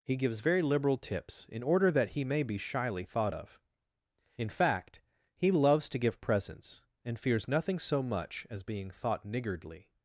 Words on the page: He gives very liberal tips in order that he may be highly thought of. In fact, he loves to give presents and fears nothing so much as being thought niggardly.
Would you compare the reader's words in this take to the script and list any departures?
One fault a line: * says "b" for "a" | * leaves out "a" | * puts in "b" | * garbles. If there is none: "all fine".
* says "shyly" for "highly"